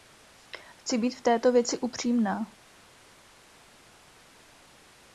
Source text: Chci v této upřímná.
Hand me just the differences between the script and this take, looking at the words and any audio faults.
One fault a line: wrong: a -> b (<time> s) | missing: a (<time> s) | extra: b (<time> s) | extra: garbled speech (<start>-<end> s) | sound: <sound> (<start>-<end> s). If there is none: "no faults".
extra: být (1.0 s)
extra: věci (1.5 s)